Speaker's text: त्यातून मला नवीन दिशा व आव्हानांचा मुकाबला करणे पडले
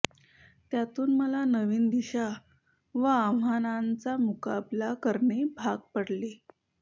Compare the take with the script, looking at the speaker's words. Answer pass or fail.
fail